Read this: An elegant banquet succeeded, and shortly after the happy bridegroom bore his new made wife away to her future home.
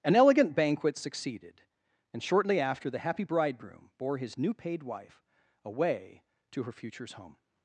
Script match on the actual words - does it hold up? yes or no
no